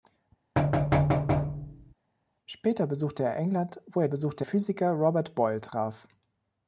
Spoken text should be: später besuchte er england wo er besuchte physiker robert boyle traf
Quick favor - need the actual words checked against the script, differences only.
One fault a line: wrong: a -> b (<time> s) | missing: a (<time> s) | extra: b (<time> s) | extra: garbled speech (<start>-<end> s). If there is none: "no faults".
no faults